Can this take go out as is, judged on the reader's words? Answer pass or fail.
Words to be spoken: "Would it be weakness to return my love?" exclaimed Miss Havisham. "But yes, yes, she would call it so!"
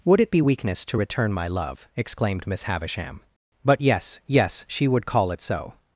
pass